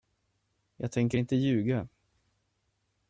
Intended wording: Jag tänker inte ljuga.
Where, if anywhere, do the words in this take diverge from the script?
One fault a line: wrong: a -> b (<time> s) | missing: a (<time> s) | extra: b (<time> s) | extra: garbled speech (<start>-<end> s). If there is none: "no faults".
no faults